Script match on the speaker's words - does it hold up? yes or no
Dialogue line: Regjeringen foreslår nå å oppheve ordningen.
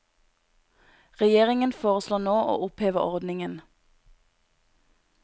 yes